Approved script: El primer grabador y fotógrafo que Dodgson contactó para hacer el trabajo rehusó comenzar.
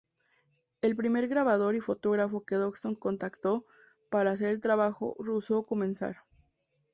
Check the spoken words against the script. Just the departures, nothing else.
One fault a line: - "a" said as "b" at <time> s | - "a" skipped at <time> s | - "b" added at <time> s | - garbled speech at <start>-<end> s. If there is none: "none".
none